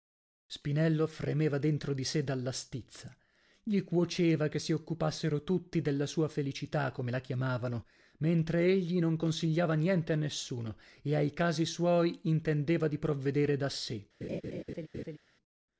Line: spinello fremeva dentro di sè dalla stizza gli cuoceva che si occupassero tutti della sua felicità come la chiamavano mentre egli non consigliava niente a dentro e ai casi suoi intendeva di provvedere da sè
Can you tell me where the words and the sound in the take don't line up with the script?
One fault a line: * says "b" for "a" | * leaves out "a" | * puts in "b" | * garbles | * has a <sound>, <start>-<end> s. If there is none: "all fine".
* says "nessuno" for "dentro"
* has a laugh, 14.2-15.2 s